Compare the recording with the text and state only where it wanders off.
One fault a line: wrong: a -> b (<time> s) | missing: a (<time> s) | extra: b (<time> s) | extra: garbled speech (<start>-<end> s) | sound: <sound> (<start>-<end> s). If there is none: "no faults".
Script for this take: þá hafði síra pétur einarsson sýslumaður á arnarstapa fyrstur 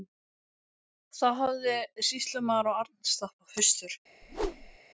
missing: síra pétur einarsson (1.8 s)
sound: whoosh (4.2-4.8 s)